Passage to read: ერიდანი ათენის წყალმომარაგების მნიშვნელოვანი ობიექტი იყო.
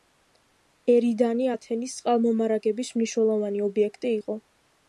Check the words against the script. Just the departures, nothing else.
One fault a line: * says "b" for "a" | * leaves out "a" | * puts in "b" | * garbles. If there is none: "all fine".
all fine